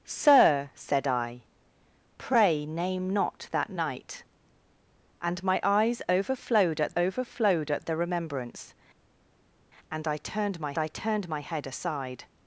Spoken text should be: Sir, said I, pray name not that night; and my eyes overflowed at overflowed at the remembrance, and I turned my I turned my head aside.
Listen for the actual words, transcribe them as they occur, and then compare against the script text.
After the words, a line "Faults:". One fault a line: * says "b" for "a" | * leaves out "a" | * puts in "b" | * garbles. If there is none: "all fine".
Sir, said I, pray name not that night; and my eyes overflowed at overflowed at the remembrance, and I turned my I turned my head aside.
Faults:
all fine